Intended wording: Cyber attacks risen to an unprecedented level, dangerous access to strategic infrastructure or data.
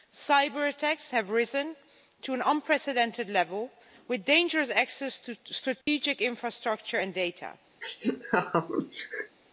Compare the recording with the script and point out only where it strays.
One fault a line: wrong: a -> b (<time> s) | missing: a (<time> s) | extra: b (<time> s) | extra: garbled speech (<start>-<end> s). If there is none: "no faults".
extra: have (1.1 s)
extra: with (4.1 s)
wrong: or -> and (7.0 s)